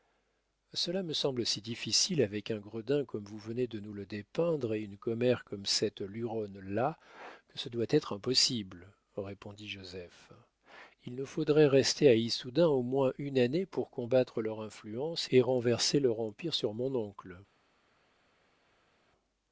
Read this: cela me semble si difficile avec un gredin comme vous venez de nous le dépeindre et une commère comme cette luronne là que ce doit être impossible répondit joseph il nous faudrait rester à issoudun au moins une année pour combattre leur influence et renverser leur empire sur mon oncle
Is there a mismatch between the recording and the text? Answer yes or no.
no